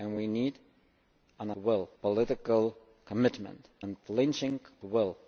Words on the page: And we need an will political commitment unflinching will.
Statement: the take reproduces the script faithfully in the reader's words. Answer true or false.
true